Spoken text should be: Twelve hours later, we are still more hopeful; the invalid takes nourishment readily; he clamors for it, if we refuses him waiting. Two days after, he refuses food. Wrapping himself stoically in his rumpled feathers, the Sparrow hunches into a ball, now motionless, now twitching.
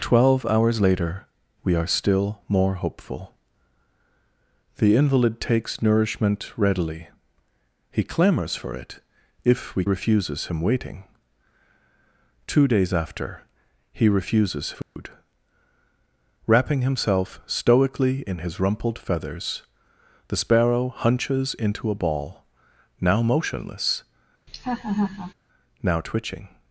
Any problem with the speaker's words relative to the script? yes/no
no